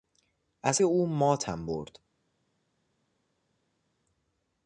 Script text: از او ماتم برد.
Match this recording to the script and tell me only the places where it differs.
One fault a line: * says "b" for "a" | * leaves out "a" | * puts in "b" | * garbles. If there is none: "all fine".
all fine